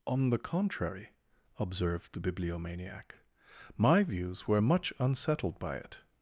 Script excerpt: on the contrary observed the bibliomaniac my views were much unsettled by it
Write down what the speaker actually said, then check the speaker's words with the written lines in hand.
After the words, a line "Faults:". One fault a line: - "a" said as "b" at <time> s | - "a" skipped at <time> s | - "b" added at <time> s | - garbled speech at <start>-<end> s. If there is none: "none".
on the contrary observed the bibliomaniac my views were much unsettled by it
Faults:
none